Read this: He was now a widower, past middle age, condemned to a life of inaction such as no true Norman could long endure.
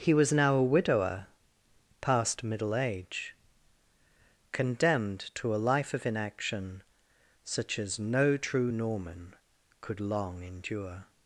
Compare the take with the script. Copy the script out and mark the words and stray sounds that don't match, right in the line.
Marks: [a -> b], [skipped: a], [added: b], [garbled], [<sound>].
He was now a widower, past middle age, condemned to a life of inaction such as no true Norman could long endure.